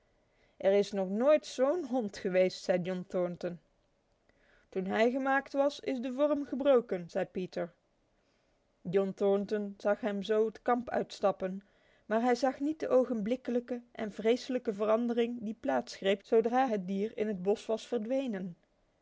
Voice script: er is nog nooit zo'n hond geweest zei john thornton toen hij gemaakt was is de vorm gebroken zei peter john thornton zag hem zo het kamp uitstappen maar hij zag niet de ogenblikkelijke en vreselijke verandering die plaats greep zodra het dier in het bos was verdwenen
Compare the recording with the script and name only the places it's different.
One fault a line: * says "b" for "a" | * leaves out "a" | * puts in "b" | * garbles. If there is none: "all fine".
all fine